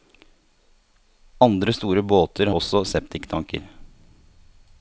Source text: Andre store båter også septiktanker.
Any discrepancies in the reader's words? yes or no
no